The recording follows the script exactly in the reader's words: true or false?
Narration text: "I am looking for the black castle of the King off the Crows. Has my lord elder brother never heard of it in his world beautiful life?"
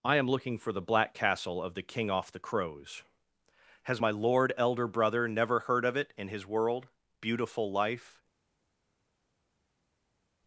true